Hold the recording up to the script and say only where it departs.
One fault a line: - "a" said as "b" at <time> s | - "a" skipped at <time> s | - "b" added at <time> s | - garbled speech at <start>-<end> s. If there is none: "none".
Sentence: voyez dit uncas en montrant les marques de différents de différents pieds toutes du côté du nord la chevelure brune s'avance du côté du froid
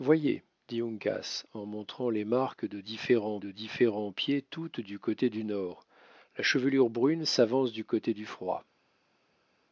none